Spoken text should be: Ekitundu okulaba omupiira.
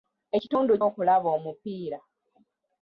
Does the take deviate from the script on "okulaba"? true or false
false